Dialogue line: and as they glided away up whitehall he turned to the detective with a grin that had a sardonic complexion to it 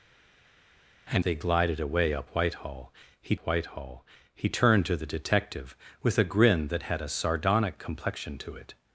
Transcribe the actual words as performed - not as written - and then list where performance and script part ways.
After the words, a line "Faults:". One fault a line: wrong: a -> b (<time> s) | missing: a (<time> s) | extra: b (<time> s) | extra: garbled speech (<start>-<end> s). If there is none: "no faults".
and they glided away up whitehall he whitehall he turned to the detective with a grin that had a sardonic complexion to it
Faults:
missing: as (1.2 s)
extra: whitehall he (3.4 s)